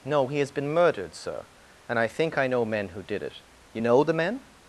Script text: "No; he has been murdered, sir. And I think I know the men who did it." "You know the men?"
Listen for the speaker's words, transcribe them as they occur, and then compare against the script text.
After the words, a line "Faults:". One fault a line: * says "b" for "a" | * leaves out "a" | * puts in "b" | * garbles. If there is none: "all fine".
"No; he has been murdered, sir. And I think I know men who did it." "You know the men?"
Faults:
* leaves out "the"